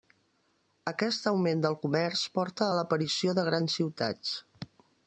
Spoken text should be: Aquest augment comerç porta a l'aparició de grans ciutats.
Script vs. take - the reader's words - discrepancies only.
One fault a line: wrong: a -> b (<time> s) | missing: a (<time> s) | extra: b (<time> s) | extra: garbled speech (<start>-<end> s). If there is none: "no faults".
extra: del (1.6 s)